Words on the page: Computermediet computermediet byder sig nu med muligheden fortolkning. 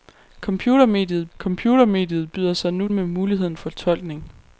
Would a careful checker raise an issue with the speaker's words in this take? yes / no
no